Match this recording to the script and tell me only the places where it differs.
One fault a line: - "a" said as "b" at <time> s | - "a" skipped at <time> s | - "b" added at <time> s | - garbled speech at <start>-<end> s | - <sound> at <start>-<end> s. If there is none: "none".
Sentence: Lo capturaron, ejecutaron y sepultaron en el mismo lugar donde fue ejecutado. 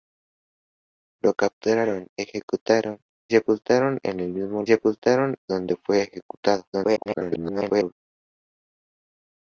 - "y" skipped at 3.0 s
- "lugar" said as "sepultaron" at 4.6 s
- garbled speech at 6.7-7.9 s